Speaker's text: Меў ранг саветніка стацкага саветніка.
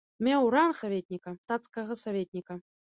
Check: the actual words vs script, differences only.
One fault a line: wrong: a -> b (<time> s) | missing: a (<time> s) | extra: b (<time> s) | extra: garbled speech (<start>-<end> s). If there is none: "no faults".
no faults